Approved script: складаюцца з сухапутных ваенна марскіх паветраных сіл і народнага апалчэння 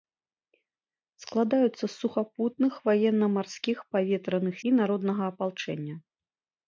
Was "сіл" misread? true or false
true